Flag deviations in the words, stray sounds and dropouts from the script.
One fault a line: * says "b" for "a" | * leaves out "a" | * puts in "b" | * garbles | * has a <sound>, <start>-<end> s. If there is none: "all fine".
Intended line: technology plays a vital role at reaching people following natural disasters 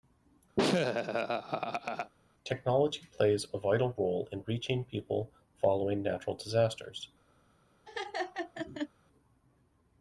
* has a laugh, 0.6-2.1 s
* says "in" for "at"
* has a laugh, 7.9-8.9 s